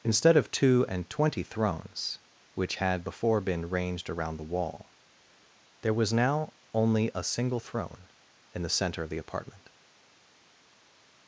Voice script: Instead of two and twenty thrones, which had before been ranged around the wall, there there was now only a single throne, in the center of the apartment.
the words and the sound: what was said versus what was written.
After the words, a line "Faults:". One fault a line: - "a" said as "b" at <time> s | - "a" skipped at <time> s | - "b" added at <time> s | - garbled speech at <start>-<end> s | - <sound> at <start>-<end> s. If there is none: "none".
Instead of two and twenty thrones, which had before been ranged around the wall, there was now only a single throne, in the center of the apartment.
Faults:
- "there" skipped at 5.9 s